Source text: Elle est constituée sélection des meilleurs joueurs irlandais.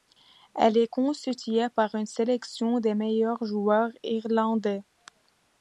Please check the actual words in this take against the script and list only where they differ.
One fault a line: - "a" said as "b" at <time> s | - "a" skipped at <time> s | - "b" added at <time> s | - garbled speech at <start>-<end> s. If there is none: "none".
- "par une" added at 1.7 s